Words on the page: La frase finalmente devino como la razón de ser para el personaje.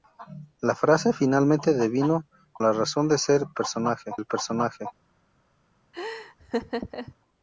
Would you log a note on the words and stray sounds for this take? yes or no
yes